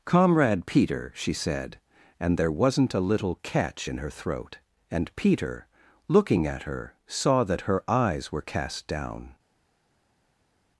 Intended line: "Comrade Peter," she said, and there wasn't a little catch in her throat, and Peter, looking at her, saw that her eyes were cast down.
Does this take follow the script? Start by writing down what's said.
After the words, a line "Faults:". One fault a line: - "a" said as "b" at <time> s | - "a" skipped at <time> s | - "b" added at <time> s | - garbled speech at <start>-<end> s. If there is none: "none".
"Comrade Peter," she said, and there wasn't a little catch in her throat, and Peter, looking at her, saw that her eyes were cast down.
Faults:
none